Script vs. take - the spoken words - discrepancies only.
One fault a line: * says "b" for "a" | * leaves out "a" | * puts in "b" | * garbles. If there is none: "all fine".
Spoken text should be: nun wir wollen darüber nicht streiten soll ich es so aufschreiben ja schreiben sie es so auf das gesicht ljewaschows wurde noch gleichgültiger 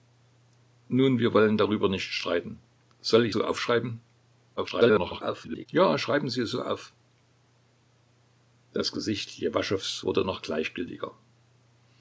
* leaves out "es"
* garbles